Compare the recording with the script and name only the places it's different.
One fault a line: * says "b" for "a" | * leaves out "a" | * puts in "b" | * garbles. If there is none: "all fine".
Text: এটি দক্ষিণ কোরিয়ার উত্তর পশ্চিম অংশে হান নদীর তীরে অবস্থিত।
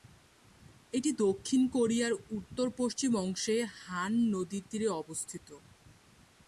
all fine